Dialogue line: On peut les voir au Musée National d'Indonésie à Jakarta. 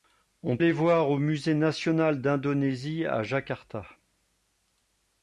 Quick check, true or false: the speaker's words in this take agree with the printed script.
false